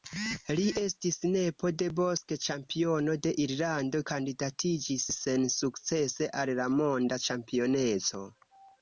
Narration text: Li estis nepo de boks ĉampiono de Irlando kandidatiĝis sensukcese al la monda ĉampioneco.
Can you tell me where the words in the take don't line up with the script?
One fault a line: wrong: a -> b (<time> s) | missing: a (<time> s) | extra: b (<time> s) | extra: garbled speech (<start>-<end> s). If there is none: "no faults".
no faults